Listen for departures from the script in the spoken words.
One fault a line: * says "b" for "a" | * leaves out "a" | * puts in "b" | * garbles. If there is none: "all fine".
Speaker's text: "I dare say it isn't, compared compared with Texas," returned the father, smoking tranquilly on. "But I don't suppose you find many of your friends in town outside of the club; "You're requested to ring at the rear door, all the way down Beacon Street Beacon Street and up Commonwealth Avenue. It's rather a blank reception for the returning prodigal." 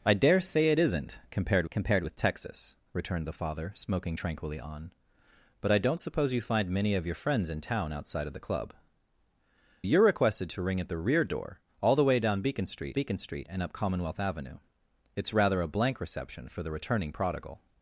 all fine